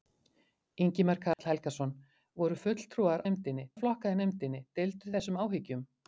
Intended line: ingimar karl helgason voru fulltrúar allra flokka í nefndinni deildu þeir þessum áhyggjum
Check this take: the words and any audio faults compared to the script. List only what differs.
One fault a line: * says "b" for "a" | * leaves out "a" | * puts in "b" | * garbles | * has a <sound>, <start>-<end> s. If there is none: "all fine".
* has a dropout, 1.3-1.4 s
* says "nefndinni" for "allra"
* leaves out "þeir"